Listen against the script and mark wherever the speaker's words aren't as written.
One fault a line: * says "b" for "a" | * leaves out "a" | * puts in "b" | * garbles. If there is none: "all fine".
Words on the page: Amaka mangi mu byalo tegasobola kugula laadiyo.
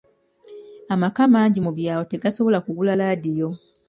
all fine